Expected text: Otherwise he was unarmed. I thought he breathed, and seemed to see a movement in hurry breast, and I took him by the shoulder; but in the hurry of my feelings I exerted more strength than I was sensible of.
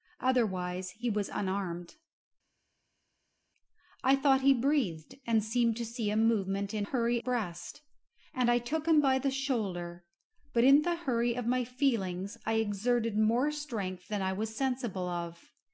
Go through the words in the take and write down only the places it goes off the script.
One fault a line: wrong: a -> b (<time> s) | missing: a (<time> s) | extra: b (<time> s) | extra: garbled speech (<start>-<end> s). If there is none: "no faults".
no faults